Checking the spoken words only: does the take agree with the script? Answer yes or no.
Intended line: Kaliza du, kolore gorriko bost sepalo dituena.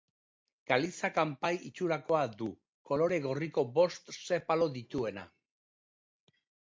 no